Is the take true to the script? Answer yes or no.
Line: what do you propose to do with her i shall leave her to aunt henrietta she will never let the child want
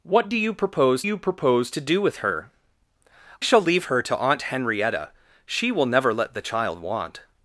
no